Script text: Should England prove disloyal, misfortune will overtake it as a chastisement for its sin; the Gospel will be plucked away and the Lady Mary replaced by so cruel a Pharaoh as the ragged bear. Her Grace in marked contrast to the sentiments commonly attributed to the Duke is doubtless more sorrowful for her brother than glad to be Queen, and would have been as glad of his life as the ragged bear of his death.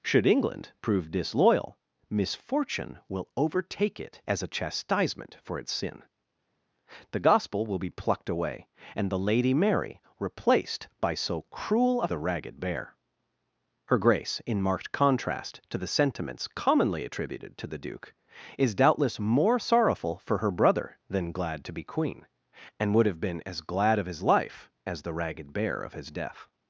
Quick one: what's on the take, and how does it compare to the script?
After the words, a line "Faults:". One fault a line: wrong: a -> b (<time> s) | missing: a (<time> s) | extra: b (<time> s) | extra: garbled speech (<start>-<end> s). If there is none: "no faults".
Should England prove disloyal, misfortune will overtake it as a chastisement for its sin; the Gospel will be plucked away and the Lady Mary replaced by so cruel a The ragged bear. Her Grace in marked contrast to the sentiments commonly attributed to the Duke is doubtless more sorrowful for her brother than glad to be Queen, and would have been as glad of his life as the ragged bear of his death.
Faults:
missing: Pharaoh as (12.1 s)